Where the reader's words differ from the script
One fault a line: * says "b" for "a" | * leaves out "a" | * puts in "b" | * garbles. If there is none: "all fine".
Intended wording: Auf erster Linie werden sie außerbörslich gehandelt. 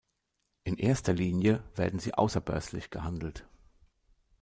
* says "In" for "Auf"